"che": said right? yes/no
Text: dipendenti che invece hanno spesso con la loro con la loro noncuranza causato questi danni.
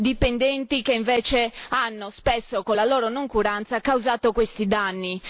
yes